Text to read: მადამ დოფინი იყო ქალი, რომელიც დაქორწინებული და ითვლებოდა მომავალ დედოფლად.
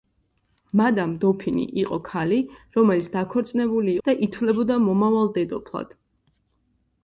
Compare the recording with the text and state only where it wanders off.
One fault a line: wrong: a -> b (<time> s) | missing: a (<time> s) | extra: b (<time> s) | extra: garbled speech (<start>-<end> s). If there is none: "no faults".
no faults